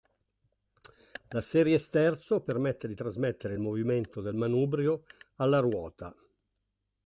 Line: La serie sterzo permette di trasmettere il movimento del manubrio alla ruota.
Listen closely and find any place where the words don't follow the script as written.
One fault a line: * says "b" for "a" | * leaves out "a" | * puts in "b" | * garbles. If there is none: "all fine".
all fine